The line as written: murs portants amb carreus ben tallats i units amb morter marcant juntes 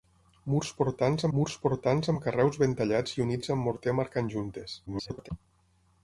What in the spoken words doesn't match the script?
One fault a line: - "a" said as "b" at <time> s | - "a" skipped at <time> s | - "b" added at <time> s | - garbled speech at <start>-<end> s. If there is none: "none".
- "murs portants" added at 1.4 s
- garbled speech at 4.9-5.3 s